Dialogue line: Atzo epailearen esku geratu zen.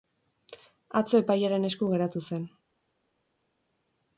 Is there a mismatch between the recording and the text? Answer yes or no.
no